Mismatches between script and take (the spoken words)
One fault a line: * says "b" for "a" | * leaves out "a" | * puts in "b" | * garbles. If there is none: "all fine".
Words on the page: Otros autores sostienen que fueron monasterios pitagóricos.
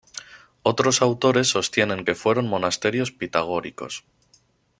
all fine